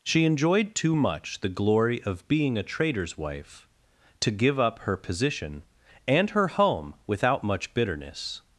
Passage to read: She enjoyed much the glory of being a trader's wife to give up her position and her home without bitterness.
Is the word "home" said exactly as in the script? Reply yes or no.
yes